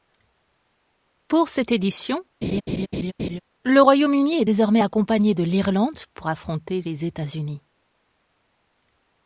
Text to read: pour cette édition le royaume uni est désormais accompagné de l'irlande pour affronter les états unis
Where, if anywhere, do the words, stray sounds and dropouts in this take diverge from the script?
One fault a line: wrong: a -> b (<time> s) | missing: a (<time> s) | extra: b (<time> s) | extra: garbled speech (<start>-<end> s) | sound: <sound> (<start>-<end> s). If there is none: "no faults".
sound: laugh (2.4-3.4 s)